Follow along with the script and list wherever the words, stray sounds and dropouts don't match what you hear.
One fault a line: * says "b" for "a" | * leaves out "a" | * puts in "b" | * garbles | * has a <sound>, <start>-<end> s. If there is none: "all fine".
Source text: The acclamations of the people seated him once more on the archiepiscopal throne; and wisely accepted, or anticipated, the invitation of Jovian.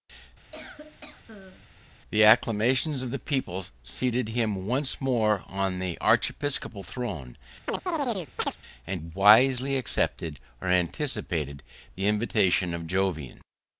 * has a cough, 0.5-1.7 s
* has a chirp, 7.7-8.6 s